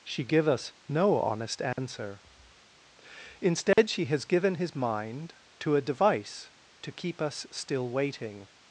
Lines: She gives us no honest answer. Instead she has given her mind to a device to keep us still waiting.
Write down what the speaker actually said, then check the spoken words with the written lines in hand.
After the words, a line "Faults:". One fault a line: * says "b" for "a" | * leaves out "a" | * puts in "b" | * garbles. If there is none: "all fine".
She give us no honest answer. Instead she has given his mind to a device to keep us still waiting.
Faults:
* says "give" for "gives"
* says "his" for "her"